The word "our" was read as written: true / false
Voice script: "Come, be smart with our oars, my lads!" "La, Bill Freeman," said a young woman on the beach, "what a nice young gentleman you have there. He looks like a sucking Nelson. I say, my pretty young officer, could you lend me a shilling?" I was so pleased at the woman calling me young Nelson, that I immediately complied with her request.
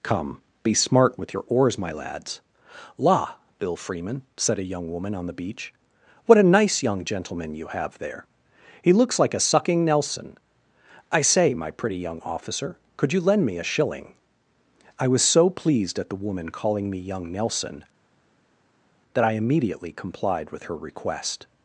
false